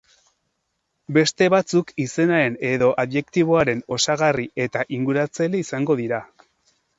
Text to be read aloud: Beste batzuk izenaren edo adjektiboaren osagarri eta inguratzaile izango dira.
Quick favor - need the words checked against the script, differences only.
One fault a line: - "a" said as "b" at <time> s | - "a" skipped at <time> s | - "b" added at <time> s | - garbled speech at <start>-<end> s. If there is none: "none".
none